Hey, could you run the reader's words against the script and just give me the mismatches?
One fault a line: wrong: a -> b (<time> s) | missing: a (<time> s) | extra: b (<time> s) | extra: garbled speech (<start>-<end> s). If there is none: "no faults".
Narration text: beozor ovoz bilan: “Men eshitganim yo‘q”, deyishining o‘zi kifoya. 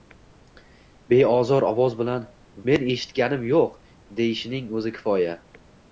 no faults